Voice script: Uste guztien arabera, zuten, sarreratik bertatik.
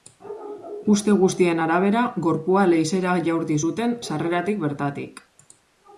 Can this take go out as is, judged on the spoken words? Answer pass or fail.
fail